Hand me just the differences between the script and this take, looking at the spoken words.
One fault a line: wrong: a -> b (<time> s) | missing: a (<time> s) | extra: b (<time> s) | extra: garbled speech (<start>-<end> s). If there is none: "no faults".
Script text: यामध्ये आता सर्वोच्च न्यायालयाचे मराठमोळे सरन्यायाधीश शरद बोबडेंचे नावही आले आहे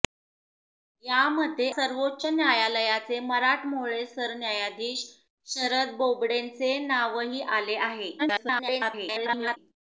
missing: आता (1.7 s)
extra: garbled speech (8.2-9.6 s)